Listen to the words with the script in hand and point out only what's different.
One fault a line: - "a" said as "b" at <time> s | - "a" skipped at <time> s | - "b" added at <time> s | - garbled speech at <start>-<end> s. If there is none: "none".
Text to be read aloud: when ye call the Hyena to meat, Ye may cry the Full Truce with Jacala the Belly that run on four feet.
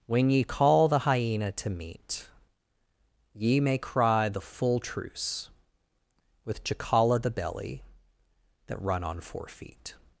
none